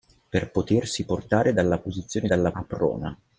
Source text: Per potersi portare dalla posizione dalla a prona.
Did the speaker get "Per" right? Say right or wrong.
right